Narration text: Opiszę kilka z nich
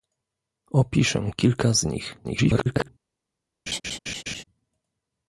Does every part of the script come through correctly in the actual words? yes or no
no